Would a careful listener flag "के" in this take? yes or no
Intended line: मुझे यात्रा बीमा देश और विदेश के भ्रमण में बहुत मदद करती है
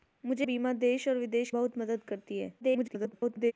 yes